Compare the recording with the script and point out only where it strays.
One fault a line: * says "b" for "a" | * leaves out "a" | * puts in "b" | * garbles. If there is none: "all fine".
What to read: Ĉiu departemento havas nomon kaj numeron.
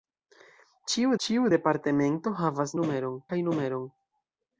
* puts in "ĉiu"
* says "numeron" for "nomon"